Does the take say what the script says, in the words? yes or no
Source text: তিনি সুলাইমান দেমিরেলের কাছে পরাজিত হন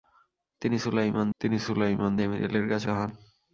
no